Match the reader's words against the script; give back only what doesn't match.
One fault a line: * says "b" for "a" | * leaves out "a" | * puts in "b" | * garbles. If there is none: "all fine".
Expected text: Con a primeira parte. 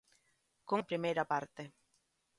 all fine